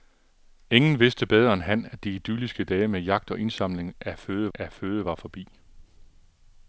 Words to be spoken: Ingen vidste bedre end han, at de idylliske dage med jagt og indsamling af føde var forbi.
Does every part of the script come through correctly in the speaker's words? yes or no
no